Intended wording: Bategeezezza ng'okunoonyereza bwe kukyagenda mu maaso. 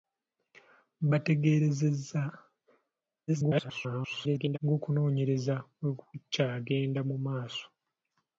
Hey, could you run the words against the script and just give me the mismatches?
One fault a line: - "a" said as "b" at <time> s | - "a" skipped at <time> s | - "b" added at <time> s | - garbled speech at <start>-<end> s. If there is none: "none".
- garbled speech at 3.3-4.6 s